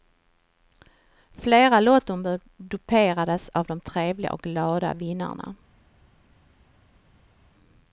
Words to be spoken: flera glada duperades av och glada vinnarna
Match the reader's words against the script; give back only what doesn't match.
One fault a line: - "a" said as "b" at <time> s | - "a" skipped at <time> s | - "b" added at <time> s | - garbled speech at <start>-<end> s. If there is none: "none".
- "glada" said as "lottombud" at 1.8 s
- "de trevliga" added at 3.6 s